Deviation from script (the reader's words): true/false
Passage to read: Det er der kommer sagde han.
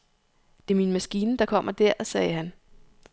true